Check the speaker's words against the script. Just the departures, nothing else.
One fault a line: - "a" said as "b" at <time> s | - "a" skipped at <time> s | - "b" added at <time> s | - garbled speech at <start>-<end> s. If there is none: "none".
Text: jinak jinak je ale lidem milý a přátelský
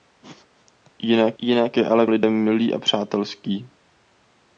none